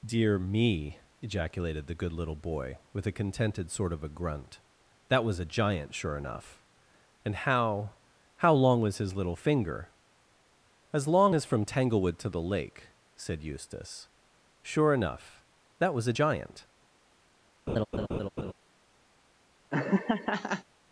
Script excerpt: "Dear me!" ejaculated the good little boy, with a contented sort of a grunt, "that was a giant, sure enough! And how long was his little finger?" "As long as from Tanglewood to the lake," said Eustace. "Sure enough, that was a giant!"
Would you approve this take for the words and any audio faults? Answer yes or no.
no